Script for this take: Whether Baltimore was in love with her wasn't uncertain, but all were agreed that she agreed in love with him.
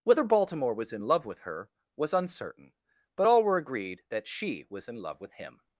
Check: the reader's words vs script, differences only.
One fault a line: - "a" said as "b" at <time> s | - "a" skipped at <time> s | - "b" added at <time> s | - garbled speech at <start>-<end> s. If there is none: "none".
- "wasn't" said as "was" at 2.0 s
- "agreed" said as "was" at 4.7 s